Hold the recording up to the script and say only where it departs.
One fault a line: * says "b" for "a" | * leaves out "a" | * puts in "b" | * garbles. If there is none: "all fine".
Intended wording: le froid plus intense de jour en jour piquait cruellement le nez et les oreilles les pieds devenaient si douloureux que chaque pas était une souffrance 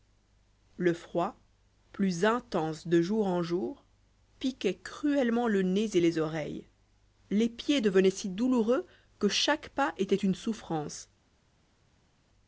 all fine